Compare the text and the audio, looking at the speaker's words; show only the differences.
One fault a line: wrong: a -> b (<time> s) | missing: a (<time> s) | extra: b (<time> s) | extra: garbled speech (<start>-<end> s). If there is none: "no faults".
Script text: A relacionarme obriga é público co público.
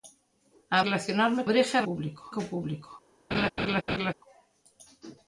no faults